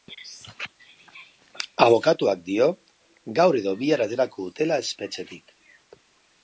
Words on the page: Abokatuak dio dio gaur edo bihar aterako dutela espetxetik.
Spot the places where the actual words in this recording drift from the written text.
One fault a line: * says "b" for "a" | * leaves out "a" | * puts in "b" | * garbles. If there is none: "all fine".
* leaves out "dio"